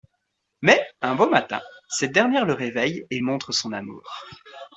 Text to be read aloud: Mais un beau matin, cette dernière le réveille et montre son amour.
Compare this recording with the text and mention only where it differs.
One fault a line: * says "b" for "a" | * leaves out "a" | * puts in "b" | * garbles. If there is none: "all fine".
all fine